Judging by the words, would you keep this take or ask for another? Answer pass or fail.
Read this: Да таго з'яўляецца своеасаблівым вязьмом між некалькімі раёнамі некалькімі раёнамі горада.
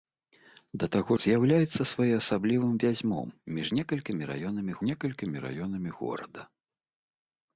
pass